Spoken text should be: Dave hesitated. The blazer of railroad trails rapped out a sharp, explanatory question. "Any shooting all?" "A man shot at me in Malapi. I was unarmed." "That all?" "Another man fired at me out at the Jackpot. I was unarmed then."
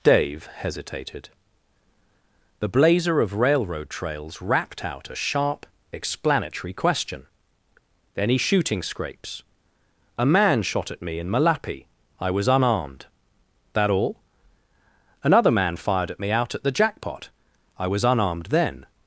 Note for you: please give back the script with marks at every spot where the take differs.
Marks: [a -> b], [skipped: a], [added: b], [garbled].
Dave hesitated. The blazer of railroad trails rapped out a sharp, explanatory question. "Any shooting [all?" -> scrapes] "A man shot at me in Malapi. I was unarmed." "That all?" "Another man fired at me out at the Jackpot. I was unarmed then."